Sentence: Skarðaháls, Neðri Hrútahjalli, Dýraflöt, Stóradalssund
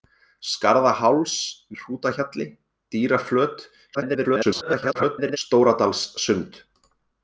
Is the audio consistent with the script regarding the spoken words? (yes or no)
no